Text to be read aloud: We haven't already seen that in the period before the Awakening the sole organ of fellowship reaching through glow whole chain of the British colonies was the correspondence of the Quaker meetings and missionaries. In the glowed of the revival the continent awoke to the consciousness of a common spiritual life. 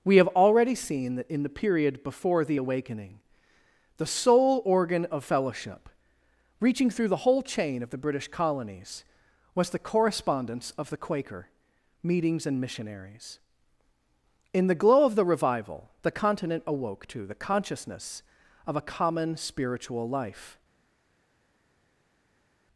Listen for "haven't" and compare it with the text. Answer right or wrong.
wrong